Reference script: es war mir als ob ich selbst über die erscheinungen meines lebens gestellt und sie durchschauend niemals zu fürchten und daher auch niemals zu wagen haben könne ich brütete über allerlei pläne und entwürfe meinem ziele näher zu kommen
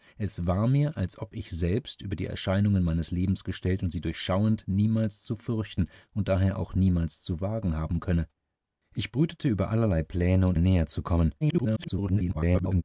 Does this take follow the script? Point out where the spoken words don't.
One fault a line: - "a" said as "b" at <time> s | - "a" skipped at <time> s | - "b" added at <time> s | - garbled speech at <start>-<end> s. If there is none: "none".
- "entwürfe meinem ziele" skipped at 10.6 s
- garbled speech at 11.4-12.8 s